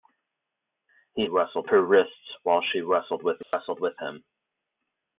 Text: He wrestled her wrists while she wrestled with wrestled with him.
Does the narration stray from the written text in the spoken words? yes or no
no